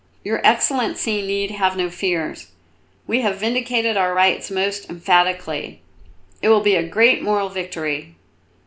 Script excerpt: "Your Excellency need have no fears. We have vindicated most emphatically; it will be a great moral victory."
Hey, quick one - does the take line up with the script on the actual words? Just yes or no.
no